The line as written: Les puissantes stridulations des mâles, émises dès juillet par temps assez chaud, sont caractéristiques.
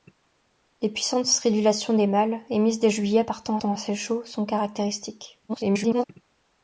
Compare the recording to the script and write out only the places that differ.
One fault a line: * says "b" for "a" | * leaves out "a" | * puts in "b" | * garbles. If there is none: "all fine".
* puts in "temps"
* garbles